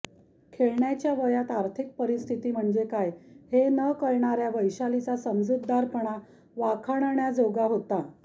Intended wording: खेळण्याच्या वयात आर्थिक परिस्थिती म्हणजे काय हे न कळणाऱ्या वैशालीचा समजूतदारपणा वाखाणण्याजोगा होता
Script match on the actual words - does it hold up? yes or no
yes